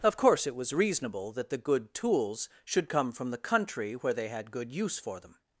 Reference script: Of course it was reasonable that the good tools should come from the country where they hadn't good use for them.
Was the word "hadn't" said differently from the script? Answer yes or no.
yes